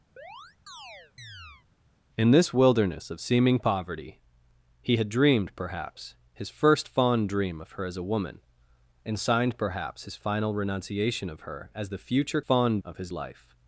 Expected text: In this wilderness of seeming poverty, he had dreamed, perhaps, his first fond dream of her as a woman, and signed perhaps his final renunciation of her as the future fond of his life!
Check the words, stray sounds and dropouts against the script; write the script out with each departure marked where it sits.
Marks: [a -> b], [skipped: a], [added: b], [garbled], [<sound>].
[chirp] In this wilderness of seeming poverty, he had dreamed, perhaps, his first fond dream of her as a woman, and signed perhaps his final renunciation of her as the future fond of his life!